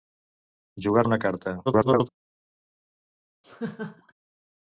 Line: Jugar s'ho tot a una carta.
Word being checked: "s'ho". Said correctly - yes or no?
no